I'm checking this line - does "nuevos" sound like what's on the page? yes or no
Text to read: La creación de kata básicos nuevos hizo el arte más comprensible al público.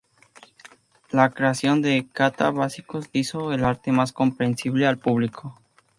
no